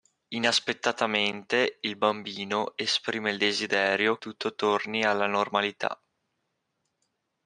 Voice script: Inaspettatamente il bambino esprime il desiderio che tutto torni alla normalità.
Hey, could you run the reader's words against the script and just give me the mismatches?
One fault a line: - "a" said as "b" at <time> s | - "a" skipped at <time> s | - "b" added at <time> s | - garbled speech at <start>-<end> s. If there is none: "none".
- "che" skipped at 4.2 s